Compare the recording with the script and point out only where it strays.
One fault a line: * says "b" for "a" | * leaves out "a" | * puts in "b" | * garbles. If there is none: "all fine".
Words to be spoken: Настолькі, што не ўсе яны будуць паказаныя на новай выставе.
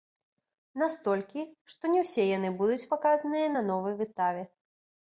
all fine